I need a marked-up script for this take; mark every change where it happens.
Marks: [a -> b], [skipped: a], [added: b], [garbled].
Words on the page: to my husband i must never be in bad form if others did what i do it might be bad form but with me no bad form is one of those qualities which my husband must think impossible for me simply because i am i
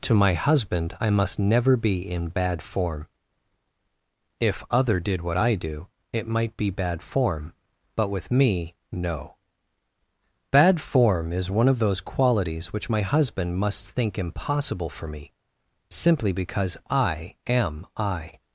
to my husband i must never be in bad form if [others -> other] did what i do it might be bad form but with me no bad form is one of those qualities which my husband must think impossible for me simply because i am i